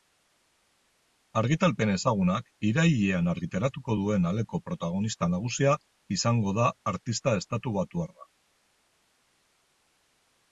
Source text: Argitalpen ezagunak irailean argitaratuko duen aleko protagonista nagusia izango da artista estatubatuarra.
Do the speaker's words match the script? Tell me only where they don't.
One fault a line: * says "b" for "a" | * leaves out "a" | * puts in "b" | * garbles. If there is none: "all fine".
all fine